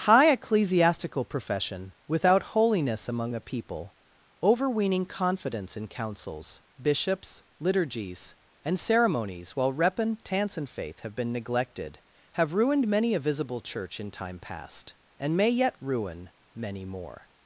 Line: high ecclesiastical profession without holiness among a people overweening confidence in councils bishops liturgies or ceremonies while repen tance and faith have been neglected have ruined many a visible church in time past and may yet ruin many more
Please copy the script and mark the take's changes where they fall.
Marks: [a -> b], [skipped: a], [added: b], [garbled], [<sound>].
high ecclesiastical profession without holiness among a people overweening confidence in councils bishops liturgies [or -> and] ceremonies while repen tance and faith have been neglected have ruined many a visible church in time past and may yet ruin many more